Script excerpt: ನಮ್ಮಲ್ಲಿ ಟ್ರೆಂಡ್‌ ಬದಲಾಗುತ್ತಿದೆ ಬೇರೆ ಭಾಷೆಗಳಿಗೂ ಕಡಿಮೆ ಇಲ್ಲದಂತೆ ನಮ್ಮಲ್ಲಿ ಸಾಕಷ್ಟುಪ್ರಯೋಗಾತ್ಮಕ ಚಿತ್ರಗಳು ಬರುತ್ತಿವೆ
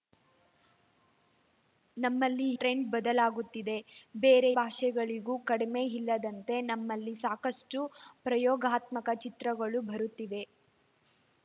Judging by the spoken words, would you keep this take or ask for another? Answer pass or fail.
pass